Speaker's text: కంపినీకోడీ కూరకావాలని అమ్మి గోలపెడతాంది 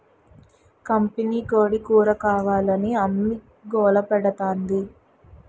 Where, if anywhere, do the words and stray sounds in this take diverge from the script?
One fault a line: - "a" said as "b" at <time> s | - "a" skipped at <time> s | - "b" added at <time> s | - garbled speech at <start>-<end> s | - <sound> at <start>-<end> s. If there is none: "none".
none